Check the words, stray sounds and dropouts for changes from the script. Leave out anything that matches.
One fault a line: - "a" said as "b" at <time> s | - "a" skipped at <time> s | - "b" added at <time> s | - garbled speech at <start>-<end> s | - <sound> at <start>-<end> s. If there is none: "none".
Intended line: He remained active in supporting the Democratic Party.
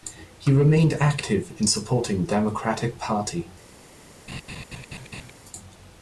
- "the" skipped at 2.2 s
- laugh at 4.3-5.3 s